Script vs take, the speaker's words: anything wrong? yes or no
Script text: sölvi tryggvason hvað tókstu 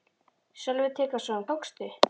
yes